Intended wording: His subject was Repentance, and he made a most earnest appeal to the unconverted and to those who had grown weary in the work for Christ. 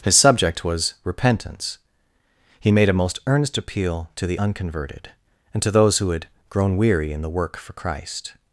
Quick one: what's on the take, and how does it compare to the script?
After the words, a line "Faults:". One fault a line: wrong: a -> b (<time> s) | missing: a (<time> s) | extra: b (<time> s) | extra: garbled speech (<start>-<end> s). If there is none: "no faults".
His subject was Repentance, he made a most earnest appeal to the unconverted and to those who had grown weary in the work for Christ.
Faults:
missing: and (1.8 s)